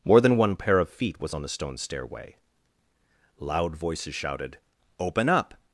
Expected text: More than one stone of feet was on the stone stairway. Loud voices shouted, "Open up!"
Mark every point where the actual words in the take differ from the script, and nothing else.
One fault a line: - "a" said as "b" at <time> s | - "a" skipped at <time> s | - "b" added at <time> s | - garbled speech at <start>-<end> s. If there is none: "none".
- "stone" said as "pair" at 0.6 s